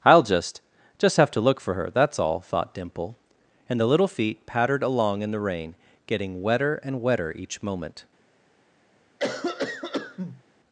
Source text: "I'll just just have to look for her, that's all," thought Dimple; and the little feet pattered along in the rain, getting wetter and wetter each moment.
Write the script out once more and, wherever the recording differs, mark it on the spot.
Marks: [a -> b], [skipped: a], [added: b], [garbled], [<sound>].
"I'll just just have to look for her, that's all," thought Dimple; and the little feet pattered along in the rain, getting wetter and wetter each moment. [cough]